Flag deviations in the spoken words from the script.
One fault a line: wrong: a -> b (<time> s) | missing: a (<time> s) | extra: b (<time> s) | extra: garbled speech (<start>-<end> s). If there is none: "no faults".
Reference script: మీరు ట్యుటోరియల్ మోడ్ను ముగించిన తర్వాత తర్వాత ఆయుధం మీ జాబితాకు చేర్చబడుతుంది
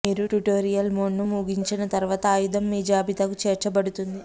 missing: తర్వాత (2.2 s)